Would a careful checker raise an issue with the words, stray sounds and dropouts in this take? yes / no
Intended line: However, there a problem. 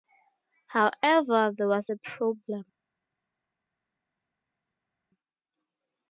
yes